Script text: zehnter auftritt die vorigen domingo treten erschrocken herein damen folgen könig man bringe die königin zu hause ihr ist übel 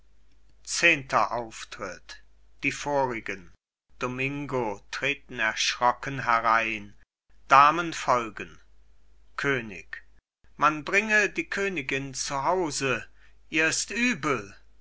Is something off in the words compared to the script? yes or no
no